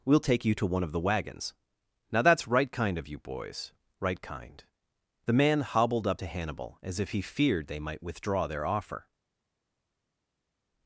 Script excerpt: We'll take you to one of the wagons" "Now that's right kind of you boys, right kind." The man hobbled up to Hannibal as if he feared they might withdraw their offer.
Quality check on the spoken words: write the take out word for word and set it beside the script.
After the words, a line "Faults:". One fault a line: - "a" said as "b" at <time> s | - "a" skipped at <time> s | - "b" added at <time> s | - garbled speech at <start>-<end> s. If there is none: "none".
We'll take you to one of the wagons" "Now that's right kind of you boys, right kind." The man hobbled up to Hannibal as if he feared they might withdraw their offer.
Faults:
none